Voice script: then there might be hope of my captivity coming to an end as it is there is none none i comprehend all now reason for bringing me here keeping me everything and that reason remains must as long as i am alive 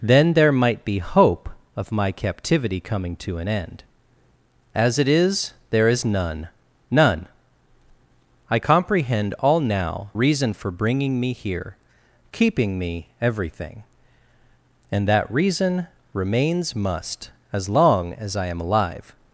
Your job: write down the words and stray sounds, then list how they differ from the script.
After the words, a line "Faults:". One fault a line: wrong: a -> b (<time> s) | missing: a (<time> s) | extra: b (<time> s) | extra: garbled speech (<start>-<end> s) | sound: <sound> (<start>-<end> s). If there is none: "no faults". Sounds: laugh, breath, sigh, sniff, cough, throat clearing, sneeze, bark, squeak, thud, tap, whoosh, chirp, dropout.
then there might be hope of my captivity coming to an end as it is there is none none i comprehend all now reason for bringing me here keeping me everything and that reason remains must as long as i am alive
Faults:
no faults